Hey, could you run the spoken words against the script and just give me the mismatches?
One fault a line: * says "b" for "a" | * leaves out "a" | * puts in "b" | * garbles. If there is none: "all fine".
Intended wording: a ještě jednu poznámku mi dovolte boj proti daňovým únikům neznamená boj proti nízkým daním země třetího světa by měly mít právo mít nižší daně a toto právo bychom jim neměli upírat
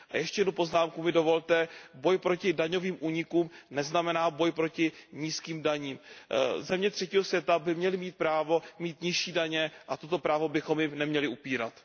all fine